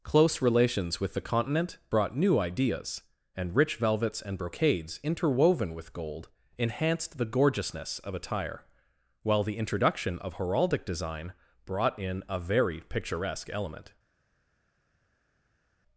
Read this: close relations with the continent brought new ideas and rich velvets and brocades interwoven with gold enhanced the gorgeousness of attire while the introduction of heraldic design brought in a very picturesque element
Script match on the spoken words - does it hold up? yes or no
yes